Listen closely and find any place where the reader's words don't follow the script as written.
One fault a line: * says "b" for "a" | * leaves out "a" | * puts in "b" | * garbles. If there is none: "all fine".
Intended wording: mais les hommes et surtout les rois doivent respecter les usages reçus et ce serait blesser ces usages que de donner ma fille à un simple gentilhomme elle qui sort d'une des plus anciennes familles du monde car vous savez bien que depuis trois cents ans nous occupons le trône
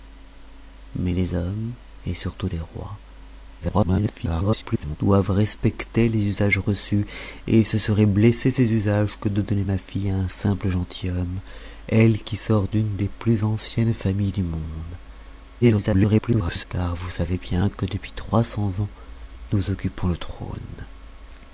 * garbles
* garbles